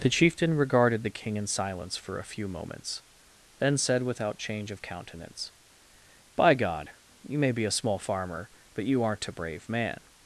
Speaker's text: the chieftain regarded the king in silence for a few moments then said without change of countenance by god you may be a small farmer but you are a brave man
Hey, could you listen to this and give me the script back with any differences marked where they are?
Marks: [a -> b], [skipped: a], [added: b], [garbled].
the chieftain regarded the king in silence for a few moments then said without change of countenance by god you may be a small farmer but you [are -> aren't] a brave man